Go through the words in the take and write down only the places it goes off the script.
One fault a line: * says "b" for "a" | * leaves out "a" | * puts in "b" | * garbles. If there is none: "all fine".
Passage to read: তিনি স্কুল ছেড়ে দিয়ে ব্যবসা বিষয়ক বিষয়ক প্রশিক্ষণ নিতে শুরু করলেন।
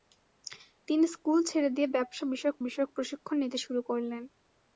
all fine